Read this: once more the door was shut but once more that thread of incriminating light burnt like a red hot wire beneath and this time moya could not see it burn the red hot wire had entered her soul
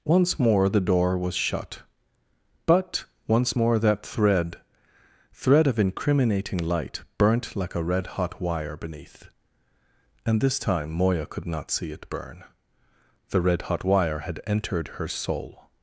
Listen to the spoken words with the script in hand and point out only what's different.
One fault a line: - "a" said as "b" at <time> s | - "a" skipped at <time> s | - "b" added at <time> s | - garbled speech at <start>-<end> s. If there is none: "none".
- "thread" added at 5.3 s